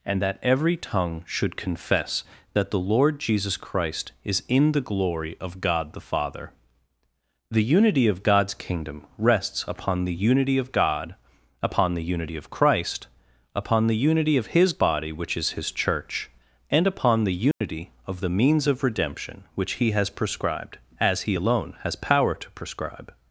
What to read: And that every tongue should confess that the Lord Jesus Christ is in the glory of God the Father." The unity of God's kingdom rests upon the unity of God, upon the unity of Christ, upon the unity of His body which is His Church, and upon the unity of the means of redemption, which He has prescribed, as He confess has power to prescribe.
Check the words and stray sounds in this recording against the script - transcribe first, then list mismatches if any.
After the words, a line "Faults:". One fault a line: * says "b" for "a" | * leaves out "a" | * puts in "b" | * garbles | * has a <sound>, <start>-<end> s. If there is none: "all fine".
And that every tongue should confess that the Lord Jesus Christ is in the glory of God the Father." The unity of God's kingdom rests upon the unity of God, upon the unity of Christ, upon the unity of His body which is His Church, and upon the unity of the means of redemption, which He has prescribed, as He alone has power to prescribe.
Faults:
* has a dropout, 17.5-17.6 s
* says "alone" for "confess"